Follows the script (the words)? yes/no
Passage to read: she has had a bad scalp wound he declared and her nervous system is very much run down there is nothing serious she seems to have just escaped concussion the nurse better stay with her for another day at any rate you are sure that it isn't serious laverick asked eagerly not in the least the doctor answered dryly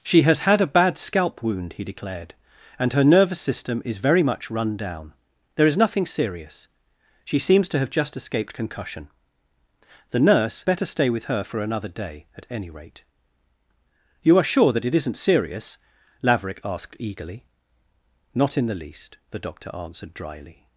yes